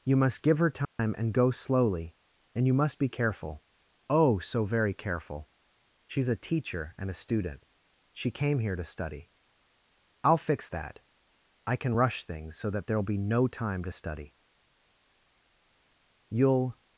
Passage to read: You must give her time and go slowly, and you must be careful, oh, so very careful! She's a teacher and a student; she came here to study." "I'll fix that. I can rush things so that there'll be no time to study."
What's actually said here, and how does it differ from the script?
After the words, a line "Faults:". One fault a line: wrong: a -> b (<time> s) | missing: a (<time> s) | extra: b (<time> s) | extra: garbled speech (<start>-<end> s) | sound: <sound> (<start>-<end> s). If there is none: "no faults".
You must give her time and go slowly, and you must be careful, oh, so very careful! She's a teacher and a student; she came here to study." "I'll fix that. I can rush things so that there'll be no time to study." "You'll
Faults:
sound: dropout (0.8-1.0 s)
extra: You'll (16.3 s)